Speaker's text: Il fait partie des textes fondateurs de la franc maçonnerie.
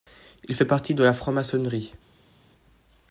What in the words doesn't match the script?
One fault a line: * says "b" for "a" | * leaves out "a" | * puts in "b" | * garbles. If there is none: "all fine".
* leaves out "des textes fondateurs"